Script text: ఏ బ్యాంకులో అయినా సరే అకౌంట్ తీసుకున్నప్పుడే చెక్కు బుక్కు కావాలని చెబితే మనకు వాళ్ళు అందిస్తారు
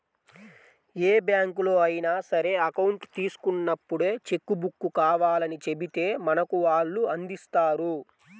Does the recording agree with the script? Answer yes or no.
yes